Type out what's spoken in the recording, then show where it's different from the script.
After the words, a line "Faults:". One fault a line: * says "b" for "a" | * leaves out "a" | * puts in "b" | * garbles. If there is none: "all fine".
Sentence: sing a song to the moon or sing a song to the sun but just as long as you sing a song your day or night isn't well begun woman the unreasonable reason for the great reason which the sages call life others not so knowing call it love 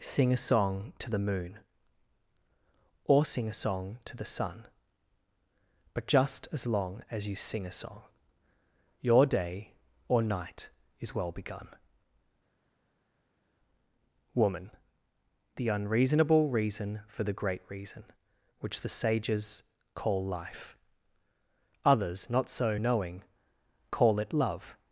sing a song to the moon or sing a song to the sun but just as long as you sing a song your day or night is well begun woman the unreasonable reason for the great reason which the sages call life others not so knowing call it love
Faults:
* says "is" for "isn't"